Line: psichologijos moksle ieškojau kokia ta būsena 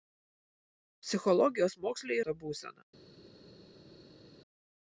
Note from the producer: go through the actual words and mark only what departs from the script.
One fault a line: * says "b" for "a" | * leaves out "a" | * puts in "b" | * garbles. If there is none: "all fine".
* leaves out "ieškojau kokia"